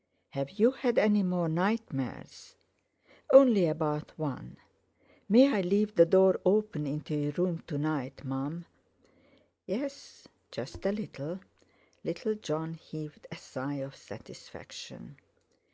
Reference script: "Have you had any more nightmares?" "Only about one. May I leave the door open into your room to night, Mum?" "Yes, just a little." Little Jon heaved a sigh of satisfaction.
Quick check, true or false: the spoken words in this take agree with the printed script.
true